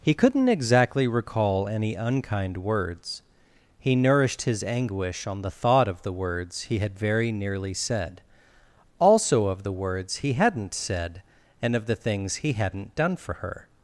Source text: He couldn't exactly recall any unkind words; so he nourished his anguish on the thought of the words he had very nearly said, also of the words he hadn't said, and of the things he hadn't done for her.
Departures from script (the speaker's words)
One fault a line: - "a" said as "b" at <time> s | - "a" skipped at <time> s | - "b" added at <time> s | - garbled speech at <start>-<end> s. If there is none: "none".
- "so" skipped at 3.2 s